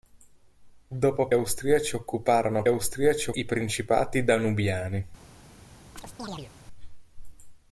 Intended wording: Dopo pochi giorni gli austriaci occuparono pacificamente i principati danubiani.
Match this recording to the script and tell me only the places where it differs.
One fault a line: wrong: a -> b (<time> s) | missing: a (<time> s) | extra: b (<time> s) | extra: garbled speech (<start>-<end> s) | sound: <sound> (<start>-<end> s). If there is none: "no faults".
missing: pochi giorni gli (1.3 s)
wrong: pacificamente -> austriaci (2.7 s)
sound: chirp (6.0-6.5 s)